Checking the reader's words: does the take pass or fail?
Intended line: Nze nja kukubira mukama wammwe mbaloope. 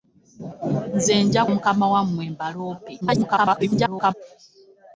fail